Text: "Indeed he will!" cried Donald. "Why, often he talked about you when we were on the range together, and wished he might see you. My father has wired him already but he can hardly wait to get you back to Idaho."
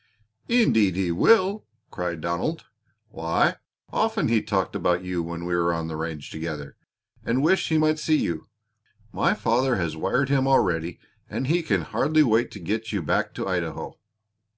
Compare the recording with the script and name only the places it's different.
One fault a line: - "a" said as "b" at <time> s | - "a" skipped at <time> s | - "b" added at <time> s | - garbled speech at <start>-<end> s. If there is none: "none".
- "but" said as "and" at 11.3 s